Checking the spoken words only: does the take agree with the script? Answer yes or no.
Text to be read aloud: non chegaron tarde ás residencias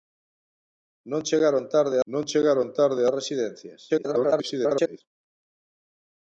no